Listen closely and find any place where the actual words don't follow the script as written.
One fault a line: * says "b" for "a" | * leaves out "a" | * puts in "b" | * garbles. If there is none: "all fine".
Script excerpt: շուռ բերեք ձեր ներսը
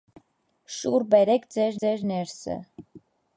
* puts in "ձեր"